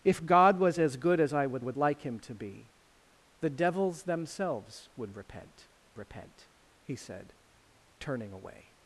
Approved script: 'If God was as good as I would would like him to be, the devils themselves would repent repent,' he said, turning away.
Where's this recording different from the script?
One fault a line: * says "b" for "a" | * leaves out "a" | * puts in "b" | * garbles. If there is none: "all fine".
all fine